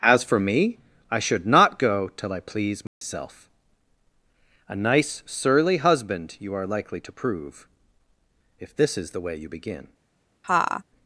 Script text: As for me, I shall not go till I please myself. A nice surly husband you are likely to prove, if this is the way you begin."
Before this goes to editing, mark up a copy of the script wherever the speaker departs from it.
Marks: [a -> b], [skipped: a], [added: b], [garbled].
As for me, I [shall -> should] not go till I please myself. A nice surly husband you are likely to prove, if this is the way you begin."